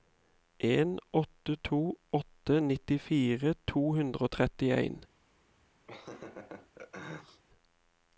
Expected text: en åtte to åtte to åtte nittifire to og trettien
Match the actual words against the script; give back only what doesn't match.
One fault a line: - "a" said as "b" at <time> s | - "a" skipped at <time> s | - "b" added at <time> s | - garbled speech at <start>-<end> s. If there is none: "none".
- "to åtte" skipped at 2.6 s
- "hundre" added at 4.0 s